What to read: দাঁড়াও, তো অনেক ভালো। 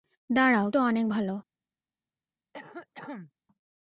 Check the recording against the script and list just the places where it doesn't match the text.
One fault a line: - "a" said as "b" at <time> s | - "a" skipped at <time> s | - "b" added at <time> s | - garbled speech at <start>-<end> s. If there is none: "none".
none